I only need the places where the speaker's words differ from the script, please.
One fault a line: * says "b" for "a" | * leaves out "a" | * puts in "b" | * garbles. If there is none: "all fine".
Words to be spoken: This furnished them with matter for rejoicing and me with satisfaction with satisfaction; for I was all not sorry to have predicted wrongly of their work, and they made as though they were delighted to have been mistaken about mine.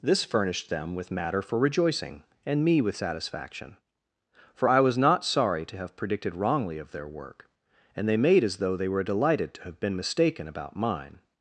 * leaves out "with satisfaction"
* leaves out "all"